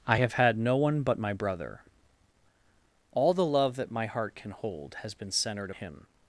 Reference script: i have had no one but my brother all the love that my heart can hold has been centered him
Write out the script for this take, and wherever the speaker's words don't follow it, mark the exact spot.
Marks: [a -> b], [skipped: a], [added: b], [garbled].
i have had no one but my brother all the love that my heart can hold has been centered him